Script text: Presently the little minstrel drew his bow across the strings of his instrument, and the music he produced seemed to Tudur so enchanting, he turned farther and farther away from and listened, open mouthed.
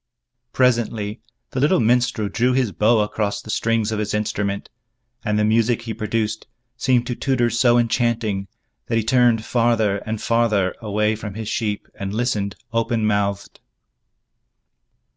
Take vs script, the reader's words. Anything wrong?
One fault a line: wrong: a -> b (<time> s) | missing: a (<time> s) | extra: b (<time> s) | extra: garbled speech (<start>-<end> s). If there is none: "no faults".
extra: that (8.9 s)
extra: his sheep (11.3 s)